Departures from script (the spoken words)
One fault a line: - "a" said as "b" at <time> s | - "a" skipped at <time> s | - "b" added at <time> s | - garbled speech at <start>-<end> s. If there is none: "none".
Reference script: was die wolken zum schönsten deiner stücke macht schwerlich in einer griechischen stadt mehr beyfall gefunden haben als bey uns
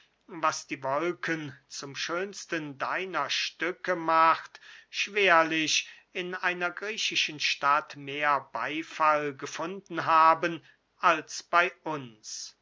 none